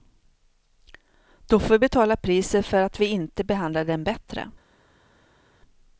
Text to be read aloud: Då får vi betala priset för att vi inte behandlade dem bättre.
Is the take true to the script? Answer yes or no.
yes